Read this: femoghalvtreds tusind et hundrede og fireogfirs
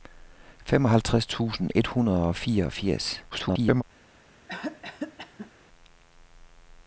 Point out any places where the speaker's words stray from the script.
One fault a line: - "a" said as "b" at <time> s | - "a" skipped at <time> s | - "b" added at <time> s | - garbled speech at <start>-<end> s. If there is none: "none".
- garbled speech at 3.3-3.8 s